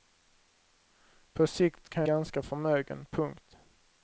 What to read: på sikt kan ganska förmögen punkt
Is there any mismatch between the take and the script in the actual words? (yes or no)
no